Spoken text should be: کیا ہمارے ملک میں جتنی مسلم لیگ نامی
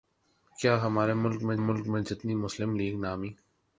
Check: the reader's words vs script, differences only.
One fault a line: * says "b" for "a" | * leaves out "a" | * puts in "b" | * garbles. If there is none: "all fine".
* puts in "ملک میں"